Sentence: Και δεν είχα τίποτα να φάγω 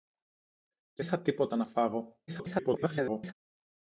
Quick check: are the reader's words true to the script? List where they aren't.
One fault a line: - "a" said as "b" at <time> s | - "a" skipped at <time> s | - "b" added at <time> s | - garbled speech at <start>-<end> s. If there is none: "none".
- "δεν" skipped at 1.1 s
- garbled speech at 2.3-3.3 s